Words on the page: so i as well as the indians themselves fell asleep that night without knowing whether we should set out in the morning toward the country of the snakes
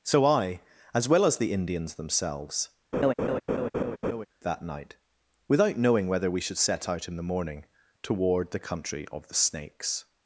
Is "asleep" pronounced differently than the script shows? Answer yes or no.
yes